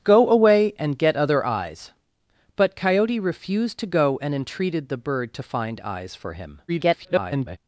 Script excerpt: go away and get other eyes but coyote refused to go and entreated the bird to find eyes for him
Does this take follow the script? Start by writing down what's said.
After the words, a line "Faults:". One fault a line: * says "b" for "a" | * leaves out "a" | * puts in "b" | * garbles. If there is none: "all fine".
go away and get other eyes but coyote refused to go and entreated the bird to find eyes for him [garbled]
Faults:
* garbles